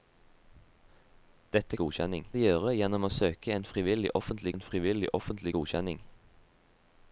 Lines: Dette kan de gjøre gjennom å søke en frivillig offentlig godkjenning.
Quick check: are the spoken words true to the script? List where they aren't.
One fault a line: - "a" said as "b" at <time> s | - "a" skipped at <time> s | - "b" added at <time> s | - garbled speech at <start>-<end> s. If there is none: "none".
- "kan" said as "godkjenning" at 1.8 s
- "en frivillig offentlig" added at 4.5 s